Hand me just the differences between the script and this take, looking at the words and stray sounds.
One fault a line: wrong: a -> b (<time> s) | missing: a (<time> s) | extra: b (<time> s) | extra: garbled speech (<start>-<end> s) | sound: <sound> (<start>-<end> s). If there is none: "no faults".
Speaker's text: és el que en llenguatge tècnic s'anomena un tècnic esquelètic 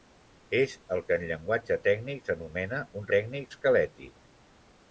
no faults